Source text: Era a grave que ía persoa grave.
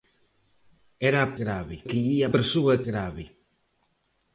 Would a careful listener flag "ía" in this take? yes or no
no